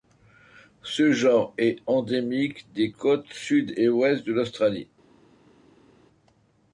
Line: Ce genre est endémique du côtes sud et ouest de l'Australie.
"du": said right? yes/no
no